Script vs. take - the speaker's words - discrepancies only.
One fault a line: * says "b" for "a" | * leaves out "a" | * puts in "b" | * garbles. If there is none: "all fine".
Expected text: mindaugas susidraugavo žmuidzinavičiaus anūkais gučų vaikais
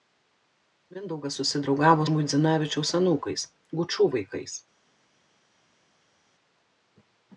all fine